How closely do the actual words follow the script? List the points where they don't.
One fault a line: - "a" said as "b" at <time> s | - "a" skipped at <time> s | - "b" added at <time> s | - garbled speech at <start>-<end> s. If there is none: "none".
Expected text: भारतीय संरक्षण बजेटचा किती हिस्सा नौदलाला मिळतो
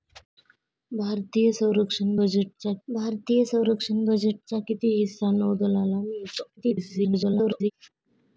- "भारतीय संरक्षण बजेटचा" added at 2.9 s
- garbled speech at 6.6-7.7 s